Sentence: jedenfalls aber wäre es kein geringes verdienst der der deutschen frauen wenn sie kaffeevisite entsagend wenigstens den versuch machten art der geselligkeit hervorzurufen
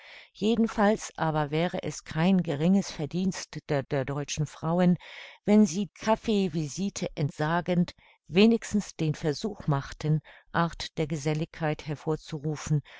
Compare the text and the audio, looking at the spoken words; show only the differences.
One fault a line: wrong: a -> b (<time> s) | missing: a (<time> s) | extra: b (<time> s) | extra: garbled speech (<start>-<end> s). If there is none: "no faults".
no faults